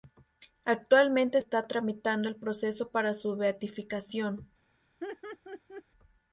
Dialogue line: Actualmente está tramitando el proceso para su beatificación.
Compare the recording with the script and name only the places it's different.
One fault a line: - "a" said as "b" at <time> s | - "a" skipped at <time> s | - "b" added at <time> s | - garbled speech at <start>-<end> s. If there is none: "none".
none